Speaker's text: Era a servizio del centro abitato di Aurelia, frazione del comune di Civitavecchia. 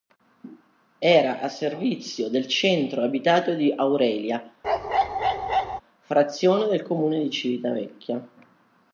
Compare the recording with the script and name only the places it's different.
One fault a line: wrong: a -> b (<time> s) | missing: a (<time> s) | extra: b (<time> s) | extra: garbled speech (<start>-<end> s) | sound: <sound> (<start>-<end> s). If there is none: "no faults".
sound: bark (4.6-5.8 s)